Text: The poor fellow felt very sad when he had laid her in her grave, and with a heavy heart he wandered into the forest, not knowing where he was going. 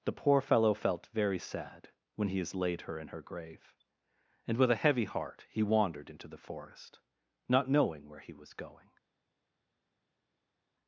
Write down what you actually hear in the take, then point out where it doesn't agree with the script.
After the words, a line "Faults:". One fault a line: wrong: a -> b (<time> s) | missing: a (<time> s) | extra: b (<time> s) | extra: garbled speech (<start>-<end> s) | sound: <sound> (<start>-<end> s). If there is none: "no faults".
The poor fellow felt very sad when he has laid her in her grave, and with a heavy heart he wandered into the forest, not knowing where he was going.
Faults:
wrong: had -> has (2.4 s)